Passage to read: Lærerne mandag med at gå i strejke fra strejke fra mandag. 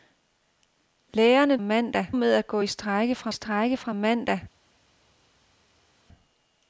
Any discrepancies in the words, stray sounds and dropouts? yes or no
no